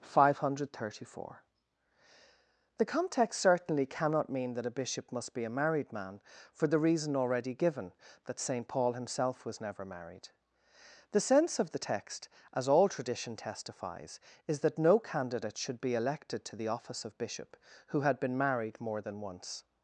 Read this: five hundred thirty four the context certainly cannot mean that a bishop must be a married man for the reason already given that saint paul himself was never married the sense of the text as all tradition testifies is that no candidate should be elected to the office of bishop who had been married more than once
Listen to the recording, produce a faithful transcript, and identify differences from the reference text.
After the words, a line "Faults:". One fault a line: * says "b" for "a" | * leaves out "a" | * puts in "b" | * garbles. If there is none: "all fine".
five hundred thirty four the context certainly cannot mean that a bishop must be a married man for the reason already given that saint paul himself was never married the sense of the text as all tradition testifies is that no candidate should be elected to the office of bishop who had been married more than once
Faults:
all fine